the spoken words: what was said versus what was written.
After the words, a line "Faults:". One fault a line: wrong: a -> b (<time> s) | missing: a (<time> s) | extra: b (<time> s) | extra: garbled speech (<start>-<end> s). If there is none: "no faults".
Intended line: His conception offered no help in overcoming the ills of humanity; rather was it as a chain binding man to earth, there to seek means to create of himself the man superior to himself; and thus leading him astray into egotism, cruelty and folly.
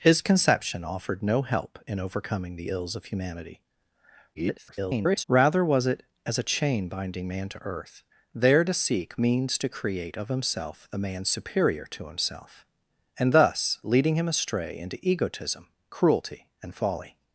His conception offered no help in overcoming the ills of humanity; [garbled] rather was it as a chain binding man to earth, there to seek means to create of himself the man superior to himself; and thus leading him astray into egotism, cruelty and folly.
Faults:
extra: garbled speech (4.3-5.2 s)